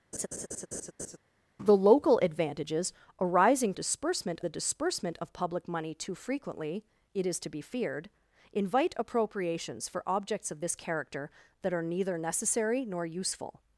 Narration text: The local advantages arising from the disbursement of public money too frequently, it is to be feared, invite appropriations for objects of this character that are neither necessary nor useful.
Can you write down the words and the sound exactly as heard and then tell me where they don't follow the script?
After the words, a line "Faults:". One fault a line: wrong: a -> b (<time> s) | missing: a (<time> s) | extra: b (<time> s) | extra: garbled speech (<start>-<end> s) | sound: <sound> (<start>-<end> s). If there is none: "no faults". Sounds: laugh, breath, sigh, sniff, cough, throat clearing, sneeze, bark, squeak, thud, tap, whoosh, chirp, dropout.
The local advantages arising disbursement the disbursement of public money too frequently, it is to be feared, invite appropriations for objects of this character that are neither necessary nor useful.
Faults:
sound: laugh (0.1-1.2 s)
wrong: from -> disbursement (3.7 s)